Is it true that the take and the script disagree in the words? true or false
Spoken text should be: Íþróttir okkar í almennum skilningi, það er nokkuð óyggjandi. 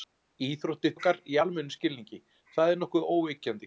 false